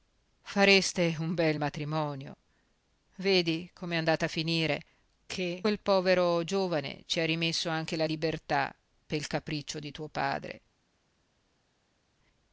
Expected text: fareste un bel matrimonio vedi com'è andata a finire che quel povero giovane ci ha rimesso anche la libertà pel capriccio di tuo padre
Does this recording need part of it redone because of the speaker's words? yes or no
no